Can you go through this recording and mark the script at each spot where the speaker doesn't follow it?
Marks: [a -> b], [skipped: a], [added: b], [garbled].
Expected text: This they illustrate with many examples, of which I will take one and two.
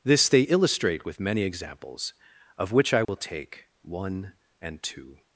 This they illustrate with many examples, of which I will take one and two.